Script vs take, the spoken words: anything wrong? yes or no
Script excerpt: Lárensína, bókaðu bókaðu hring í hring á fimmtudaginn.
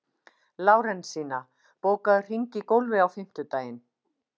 yes